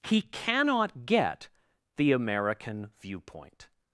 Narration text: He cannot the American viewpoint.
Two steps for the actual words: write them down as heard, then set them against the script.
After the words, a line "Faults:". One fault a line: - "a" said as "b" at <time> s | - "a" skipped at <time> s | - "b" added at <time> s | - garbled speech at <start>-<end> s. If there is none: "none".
He cannot get the American viewpoint.
Faults:
- "get" added at 1.1 s